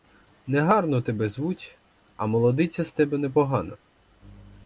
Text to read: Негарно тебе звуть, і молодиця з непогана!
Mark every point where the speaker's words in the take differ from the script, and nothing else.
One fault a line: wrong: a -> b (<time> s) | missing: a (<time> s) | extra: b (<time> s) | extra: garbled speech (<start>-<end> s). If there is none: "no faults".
wrong: і -> а (2.2 s)
extra: тебе (2.9 s)